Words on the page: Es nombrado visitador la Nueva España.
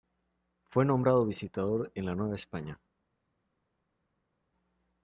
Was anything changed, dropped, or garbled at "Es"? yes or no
yes